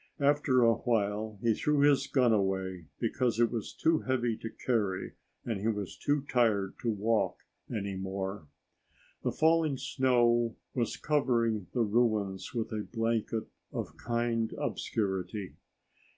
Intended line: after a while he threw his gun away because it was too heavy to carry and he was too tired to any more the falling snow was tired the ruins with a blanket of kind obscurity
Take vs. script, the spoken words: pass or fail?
fail